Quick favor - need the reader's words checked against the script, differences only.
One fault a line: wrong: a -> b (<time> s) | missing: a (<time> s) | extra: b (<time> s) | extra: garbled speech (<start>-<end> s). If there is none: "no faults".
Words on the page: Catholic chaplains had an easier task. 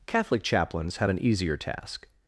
wrong: had -> have (1.0 s)